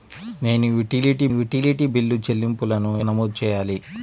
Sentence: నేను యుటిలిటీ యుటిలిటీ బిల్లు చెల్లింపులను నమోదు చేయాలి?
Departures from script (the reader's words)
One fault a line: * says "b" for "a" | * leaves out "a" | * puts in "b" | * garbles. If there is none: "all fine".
all fine